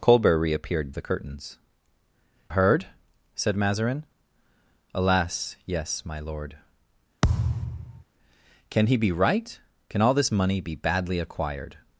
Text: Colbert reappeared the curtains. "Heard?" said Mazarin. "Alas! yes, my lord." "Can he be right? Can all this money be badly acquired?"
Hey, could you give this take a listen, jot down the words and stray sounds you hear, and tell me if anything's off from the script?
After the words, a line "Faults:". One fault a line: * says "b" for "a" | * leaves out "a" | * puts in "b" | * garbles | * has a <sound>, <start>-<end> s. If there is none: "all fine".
Colbert reappeared the curtains. "Heard?" said Mazarin. "Alas! yes, my lord." "Can he be right? Can all this money be badly acquired?"
Faults:
* has a thud, 7.2-8.0 s